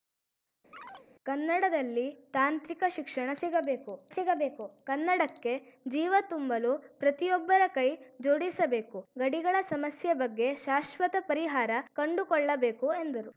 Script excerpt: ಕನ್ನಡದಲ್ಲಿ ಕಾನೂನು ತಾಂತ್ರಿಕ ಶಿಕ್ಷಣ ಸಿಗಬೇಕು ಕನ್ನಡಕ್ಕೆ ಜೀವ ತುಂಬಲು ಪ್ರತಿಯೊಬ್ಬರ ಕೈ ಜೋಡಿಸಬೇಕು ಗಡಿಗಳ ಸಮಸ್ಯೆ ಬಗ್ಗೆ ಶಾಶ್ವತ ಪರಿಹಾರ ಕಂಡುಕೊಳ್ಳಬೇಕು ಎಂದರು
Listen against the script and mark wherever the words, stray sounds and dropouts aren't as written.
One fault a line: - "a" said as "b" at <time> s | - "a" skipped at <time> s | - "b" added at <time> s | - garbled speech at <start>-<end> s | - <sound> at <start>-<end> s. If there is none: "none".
- chirp at 0.7-1.1 s
- "ಕಾನೂನು" skipped at 2.1 s
- "ಸಿಗಬೇಕು" added at 4.1 s